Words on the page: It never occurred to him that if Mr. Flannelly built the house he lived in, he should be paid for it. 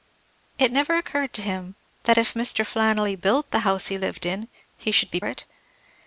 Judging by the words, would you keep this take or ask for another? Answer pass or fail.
fail